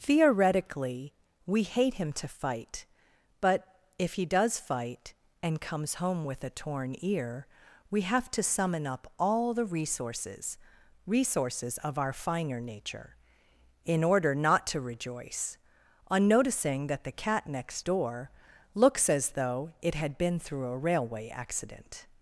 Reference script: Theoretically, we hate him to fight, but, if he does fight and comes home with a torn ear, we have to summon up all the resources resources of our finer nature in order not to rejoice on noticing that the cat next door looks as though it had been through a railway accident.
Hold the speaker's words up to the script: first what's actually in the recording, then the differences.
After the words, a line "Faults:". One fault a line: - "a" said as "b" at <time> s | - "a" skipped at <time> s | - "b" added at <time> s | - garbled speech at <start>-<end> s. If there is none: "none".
Theoretically, we hate him to fight, but, if he does fight and comes home with a torn ear, we have to summon up all the resources resources of our finer nature in order not to rejoice on noticing that the cat next door looks as though it had been through a railway accident.
Faults:
none